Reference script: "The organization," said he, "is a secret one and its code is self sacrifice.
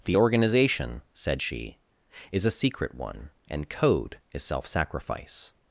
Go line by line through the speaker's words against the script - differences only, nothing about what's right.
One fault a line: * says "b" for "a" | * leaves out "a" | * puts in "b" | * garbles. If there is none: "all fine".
* says "she" for "he"
* leaves out "its"